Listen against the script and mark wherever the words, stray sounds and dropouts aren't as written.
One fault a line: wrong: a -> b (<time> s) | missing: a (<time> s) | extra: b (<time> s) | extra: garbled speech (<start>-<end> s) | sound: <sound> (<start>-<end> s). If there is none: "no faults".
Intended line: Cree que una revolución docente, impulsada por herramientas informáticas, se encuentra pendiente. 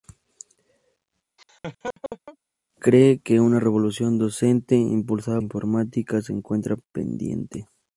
sound: laugh (1.4-2.4 s)
missing: por herramientas (5.4 s)